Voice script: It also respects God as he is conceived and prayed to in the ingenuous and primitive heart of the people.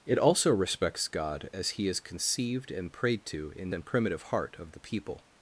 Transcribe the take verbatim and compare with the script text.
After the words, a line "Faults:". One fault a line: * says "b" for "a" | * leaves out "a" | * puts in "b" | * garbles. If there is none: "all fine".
It also respects God as he is conceived and prayed to in and primitive heart of the people.
Faults:
* leaves out "the ingenuous"